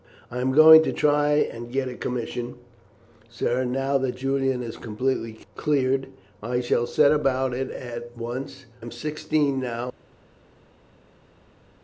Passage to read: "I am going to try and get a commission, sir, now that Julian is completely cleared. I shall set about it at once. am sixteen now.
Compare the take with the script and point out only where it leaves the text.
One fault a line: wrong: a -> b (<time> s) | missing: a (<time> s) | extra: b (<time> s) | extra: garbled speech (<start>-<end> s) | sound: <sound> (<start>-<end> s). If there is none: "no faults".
no faults